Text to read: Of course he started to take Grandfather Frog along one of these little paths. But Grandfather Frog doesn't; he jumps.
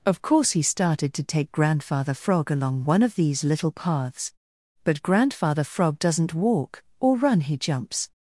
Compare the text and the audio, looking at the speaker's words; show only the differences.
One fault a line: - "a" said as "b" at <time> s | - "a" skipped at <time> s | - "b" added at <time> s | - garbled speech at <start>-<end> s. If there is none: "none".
- "walk or run" added at 6.3 s